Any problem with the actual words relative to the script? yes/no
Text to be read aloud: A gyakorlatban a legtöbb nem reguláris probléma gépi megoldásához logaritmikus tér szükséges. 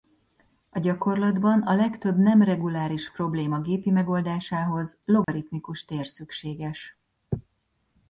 no